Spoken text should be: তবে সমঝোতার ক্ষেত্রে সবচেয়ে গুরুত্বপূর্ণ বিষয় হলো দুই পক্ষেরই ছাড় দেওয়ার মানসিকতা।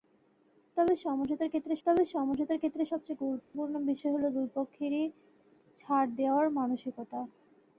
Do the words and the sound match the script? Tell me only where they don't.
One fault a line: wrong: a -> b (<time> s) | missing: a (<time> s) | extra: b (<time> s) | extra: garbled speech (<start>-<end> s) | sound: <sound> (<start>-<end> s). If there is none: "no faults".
extra: তবে সমঝোতার ক্ষেত্রে (1.9 s)
sound: dropout (3.4-3.5 s)